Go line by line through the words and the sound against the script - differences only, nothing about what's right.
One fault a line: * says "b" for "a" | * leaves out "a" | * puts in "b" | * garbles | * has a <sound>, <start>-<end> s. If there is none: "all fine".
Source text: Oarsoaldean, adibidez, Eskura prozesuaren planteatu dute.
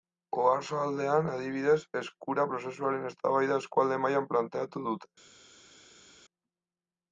* puts in "eztabaida eskualde mailan"